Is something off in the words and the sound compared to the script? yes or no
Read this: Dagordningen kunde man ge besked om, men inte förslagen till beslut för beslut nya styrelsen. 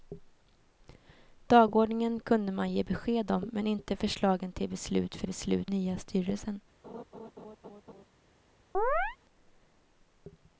yes